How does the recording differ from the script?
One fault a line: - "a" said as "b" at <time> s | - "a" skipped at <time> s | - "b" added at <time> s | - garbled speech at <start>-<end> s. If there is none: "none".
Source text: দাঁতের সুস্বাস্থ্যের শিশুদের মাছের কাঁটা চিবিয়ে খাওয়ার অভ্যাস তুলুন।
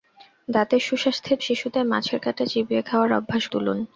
none